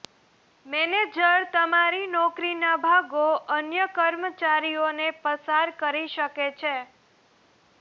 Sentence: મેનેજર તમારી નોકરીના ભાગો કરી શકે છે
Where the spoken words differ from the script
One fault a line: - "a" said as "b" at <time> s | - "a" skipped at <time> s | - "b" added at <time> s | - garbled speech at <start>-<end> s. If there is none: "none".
- "અન્ય કર્મચારીઓને પસાર" added at 3.6 s